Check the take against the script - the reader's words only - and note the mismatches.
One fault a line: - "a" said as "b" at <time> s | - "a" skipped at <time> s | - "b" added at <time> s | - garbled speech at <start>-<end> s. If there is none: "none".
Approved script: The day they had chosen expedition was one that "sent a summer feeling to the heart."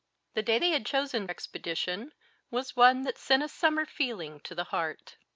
none